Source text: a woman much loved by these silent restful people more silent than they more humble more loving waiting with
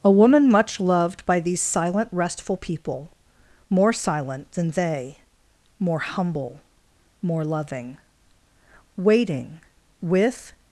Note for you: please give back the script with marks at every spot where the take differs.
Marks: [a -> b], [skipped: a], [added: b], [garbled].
a woman much loved by these silent restful people more silent than they more humble more loving waiting with